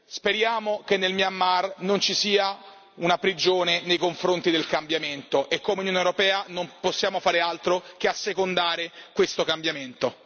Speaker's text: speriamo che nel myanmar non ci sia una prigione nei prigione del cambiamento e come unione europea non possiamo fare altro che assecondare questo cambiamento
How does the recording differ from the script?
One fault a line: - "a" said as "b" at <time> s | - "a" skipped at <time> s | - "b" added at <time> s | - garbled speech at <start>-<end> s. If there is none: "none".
- "prigione" said as "confronti" at 4.0 s